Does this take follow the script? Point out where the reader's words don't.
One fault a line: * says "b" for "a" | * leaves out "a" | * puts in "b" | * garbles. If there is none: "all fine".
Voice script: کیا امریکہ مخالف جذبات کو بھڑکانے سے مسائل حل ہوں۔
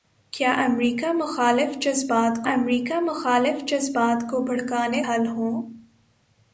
* puts in "امریکہ مخالف جذبات"
* leaves out "سے مسائل"